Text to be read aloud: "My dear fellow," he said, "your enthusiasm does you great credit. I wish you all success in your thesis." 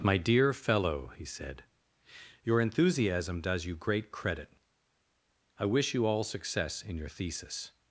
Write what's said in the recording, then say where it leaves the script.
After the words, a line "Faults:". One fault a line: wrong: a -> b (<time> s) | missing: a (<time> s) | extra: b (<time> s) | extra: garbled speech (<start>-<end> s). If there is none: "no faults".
"My dear fellow," he said, "your enthusiasm does you great credit. I wish you all success in your thesis."
Faults:
no faults